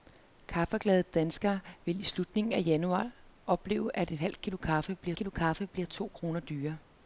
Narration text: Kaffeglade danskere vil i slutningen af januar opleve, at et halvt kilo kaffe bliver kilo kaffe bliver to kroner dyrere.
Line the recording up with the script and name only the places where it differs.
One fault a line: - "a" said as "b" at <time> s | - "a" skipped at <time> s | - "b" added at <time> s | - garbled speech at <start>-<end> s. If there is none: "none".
none